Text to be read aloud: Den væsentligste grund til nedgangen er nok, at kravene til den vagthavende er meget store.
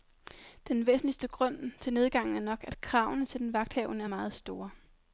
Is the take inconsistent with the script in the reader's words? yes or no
no